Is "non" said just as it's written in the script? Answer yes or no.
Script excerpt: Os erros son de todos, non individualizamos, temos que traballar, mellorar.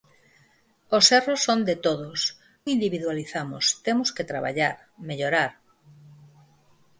no